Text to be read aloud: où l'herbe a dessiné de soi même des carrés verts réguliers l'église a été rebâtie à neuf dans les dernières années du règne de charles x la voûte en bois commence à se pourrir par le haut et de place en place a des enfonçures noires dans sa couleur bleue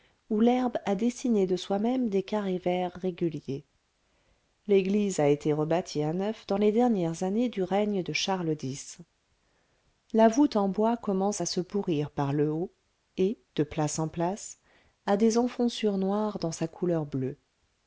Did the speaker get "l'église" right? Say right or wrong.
right